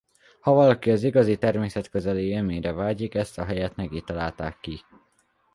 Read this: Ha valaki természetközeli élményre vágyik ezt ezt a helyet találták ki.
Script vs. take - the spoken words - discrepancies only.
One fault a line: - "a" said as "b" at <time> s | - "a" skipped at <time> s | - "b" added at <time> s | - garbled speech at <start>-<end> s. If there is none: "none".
- "az igazi" added at 0.9 s
- "ezt" skipped at 3.4 s
- "neki" added at 3.7 s